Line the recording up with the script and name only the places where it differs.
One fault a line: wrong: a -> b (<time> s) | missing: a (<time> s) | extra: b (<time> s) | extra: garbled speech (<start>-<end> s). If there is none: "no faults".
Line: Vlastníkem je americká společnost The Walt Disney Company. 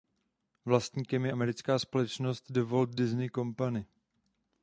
no faults